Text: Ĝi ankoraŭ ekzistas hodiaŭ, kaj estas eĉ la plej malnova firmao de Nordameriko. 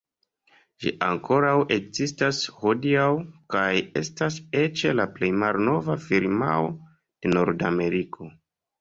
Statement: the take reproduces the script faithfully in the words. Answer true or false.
true